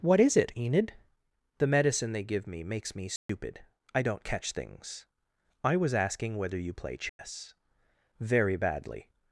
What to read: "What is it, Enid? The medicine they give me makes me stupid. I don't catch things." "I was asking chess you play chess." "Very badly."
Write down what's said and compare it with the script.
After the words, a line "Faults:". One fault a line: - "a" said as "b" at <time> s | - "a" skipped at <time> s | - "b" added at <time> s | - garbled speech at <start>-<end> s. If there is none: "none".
"What is it, Enid? The medicine they give me makes me stupid. I don't catch things." "I was asking whether you play chess." "Very badly."
Faults:
- "chess" said as "whether" at 6.4 s